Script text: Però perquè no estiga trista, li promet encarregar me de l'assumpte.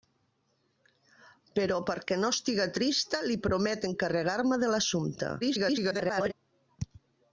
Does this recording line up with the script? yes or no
no